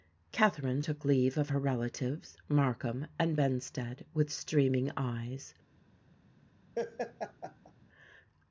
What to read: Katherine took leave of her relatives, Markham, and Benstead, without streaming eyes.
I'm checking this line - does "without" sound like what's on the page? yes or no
no